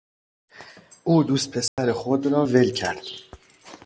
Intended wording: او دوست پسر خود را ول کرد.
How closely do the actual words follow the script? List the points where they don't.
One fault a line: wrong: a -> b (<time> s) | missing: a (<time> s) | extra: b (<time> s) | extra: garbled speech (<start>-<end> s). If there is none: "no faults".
no faults